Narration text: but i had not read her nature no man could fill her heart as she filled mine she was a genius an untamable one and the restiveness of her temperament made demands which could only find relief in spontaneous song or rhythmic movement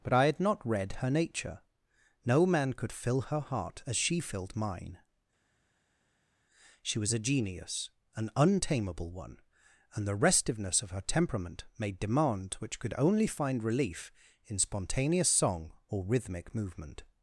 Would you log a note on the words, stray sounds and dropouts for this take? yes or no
yes